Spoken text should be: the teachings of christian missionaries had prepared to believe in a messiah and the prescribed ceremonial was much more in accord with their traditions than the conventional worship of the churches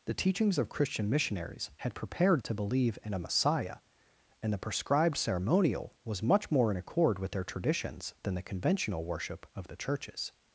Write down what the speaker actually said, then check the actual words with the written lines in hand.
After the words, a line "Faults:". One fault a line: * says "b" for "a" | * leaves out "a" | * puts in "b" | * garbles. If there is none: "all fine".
the teachings of christian missionaries had prepared to believe in a messiah and the prescribed ceremonial was much more in accord with their traditions than the conventional worship of the churches
Faults:
all fine